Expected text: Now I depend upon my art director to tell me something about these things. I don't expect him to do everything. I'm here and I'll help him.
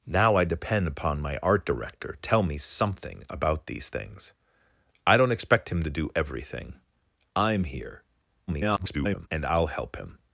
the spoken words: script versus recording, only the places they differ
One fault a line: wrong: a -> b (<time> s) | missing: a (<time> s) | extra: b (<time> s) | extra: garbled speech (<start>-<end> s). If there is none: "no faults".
missing: to (2.2 s)
extra: garbled speech (8.5-9.3 s)